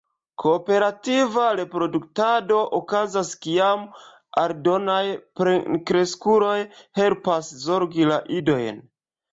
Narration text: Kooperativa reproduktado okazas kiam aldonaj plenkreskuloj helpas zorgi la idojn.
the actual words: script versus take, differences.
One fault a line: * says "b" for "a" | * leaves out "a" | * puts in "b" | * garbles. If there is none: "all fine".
all fine